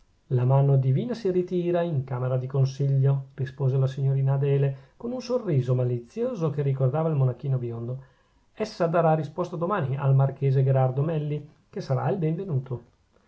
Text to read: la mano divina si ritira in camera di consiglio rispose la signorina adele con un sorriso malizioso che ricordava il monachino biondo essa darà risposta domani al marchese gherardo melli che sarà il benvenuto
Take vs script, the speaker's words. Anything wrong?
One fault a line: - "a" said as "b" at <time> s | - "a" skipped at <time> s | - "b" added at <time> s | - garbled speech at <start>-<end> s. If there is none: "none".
none